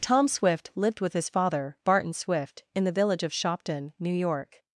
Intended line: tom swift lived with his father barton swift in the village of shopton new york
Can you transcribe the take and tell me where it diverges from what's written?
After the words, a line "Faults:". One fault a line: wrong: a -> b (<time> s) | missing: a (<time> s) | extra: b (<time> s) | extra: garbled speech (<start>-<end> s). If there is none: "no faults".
tom swift lived with his father barton swift in the village of shopton new york
Faults:
no faults